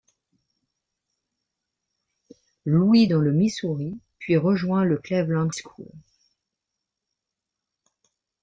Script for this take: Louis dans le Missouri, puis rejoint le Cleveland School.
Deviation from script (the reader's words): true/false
false